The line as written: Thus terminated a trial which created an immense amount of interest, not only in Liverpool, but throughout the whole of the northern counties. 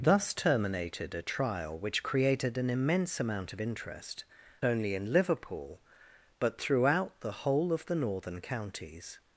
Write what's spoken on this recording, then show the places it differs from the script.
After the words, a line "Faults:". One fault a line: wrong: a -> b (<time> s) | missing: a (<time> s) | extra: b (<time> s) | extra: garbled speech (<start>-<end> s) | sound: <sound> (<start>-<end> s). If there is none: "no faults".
Thus terminated a trial which created an immense amount of interest, only in Liverpool, but throughout the whole of the northern counties.
Faults:
missing: not (4.2 s)